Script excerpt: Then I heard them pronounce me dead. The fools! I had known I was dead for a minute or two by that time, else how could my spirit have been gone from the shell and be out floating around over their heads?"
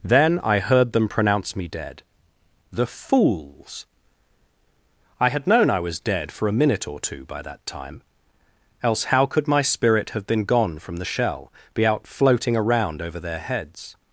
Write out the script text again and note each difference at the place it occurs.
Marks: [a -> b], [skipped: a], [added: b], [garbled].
Then I heard them pronounce me dead. The fools! I had known I was dead for a minute or two by that time, else how could my spirit have been gone from the shell [skipped: and] be out floating around over their heads?"